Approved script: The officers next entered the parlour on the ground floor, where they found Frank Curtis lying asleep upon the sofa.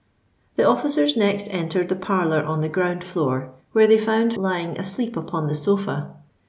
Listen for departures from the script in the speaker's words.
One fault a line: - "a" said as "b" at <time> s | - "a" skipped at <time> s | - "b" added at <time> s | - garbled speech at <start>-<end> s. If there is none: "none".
- "Frank Curtis" skipped at 4.3 s